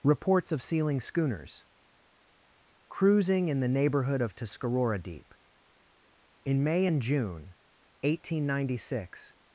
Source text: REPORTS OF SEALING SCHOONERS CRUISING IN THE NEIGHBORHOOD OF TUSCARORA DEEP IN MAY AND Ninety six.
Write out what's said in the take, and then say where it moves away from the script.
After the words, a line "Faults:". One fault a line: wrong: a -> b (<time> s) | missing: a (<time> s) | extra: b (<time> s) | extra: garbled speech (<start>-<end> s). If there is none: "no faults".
REPORTS OF SEALING SCHOONERS CRUISING IN THE NEIGHBORHOOD OF TUSCARORA DEEP IN MAY AND JUNE, eighteen ninety six.
Faults:
extra: JUNE eighteen (7.0 s)